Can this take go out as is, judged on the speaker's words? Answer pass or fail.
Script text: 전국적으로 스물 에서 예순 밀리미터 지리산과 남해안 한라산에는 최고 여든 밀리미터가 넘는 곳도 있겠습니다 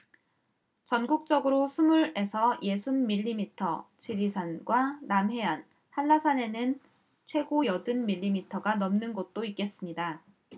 pass